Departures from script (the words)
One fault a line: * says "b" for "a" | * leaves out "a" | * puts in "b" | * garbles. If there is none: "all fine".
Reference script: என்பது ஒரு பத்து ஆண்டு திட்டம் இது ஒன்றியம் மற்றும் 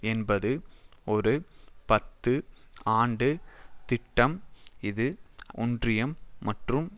all fine